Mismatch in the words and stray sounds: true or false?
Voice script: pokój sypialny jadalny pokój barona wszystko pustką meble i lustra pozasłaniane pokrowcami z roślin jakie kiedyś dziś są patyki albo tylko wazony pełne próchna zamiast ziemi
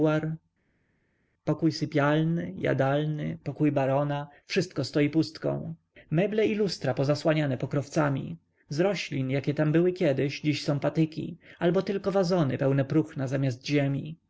true